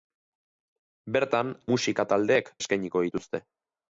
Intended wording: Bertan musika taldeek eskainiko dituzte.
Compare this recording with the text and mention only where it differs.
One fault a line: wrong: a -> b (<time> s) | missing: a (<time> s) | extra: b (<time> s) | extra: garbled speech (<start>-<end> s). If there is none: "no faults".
no faults